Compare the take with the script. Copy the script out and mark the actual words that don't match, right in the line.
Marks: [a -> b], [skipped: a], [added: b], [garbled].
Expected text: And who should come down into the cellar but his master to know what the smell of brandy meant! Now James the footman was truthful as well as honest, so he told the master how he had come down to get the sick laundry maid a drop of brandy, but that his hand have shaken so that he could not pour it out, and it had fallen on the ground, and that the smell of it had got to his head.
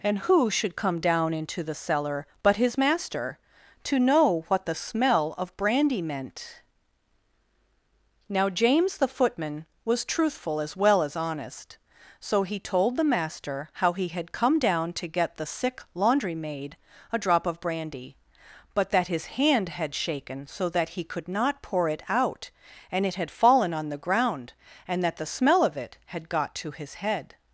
And who should come down into the cellar but his master to know what the smell of brandy meant! Now James the footman was truthful as well as honest, so he told the master how he had come down to get the sick laundry maid a drop of brandy, but that his hand [have -> had] shaken so that he could not pour it out, and it had fallen on the ground, and that the smell of it had got to his head.